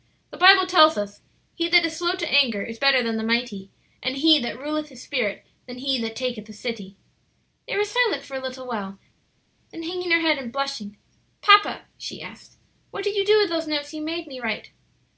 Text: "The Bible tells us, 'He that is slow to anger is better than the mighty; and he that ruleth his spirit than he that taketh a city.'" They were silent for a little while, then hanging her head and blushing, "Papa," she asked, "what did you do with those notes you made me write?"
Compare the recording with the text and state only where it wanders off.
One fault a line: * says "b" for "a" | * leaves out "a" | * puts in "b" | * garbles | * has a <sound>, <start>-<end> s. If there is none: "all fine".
all fine